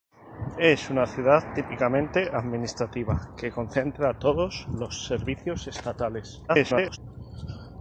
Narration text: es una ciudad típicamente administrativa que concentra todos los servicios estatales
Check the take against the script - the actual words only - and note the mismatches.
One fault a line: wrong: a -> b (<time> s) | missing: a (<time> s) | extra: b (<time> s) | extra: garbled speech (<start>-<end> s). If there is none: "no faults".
extra: garbled speech (6.5-7.0 s)